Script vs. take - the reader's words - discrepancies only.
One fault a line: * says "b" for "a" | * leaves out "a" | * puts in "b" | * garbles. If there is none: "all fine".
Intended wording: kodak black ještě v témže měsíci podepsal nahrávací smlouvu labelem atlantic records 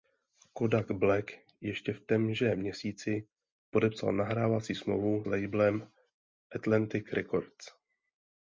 all fine